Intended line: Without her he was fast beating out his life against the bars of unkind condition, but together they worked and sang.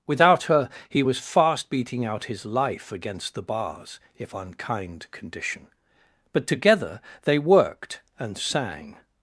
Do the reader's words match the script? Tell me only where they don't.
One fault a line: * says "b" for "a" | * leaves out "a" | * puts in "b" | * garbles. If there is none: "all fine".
* says "if" for "of"